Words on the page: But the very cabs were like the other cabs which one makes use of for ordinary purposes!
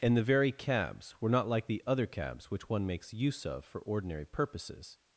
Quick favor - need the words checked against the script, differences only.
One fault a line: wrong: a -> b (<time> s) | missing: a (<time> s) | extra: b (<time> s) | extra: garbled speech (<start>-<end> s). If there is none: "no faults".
wrong: But -> And (0.0 s)
extra: not (1.3 s)